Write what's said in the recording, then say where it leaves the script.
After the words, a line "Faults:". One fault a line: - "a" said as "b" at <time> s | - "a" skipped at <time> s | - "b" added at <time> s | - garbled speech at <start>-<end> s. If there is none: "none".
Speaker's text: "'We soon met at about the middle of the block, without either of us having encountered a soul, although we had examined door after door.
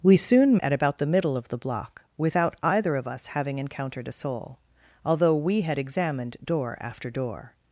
"'We soon at about the middle of the block, without either of us having encountered a soul, although we had examined door after door.
Faults:
- "met" skipped at 0.6 s